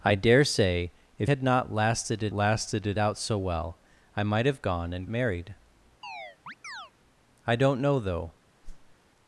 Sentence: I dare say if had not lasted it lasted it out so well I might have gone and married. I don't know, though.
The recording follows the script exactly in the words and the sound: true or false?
false